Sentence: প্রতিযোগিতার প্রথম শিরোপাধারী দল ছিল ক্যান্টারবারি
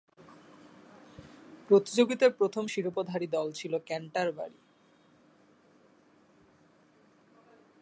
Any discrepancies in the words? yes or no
no